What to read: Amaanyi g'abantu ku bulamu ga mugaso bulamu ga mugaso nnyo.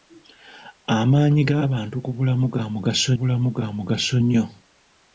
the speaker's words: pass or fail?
pass